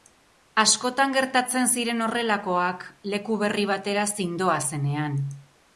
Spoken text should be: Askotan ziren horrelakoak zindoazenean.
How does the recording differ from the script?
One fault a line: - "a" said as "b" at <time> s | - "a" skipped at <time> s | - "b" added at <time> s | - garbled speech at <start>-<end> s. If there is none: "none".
- "gertatzen" added at 1.2 s
- "leku berri batera" added at 3.1 s